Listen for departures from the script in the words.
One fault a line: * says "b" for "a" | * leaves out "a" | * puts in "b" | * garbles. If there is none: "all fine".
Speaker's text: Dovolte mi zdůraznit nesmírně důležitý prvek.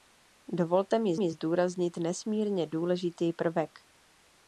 * puts in "mi"